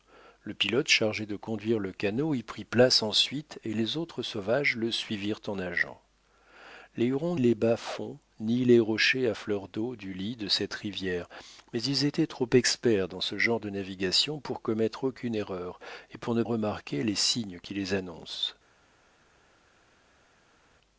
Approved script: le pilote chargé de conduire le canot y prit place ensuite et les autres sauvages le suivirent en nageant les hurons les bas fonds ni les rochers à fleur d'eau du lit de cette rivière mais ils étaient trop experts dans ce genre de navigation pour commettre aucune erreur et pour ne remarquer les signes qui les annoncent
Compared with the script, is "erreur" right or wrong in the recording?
right